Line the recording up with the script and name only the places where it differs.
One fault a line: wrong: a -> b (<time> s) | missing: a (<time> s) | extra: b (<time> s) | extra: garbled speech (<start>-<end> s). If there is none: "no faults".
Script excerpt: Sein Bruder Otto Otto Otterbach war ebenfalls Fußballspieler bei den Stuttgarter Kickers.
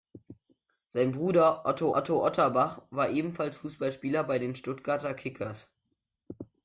no faults